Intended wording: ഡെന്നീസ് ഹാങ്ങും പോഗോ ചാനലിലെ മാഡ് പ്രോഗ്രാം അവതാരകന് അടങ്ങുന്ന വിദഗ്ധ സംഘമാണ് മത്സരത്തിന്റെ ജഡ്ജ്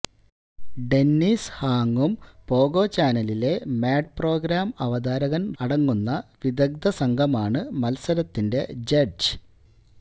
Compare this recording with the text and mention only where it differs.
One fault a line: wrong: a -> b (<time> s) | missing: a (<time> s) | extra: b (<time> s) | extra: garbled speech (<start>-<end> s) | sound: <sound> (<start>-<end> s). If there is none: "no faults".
no faults